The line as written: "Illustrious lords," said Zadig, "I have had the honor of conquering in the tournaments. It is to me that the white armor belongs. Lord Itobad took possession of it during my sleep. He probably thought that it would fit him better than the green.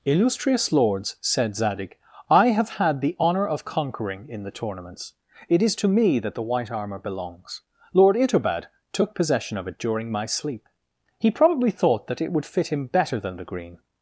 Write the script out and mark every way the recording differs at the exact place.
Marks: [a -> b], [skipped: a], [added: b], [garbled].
"Illustrious lords," said Zadig, "I have had the honor of conquering in the tournaments. It is to me that the white armor belongs. Lord Itobad took possession of it during my sleep. He probably thought that it would fit him better than the green.